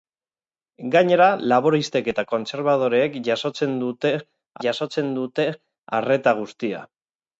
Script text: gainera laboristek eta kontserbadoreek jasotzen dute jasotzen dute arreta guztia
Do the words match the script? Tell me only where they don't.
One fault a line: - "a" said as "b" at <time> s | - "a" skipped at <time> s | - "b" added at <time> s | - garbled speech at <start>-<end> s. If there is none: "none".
none